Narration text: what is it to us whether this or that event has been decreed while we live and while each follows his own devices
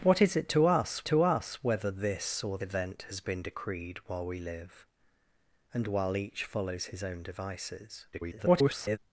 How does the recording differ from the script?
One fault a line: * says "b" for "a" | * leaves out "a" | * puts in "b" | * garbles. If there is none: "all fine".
* puts in "to us"
* leaves out "that"
* garbles